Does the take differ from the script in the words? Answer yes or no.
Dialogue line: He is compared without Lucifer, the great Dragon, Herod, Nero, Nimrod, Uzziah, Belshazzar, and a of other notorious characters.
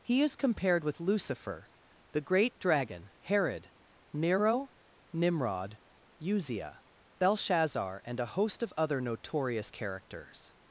yes